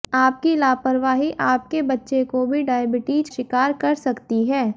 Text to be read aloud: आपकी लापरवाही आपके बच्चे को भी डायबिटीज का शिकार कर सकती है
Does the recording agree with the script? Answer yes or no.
no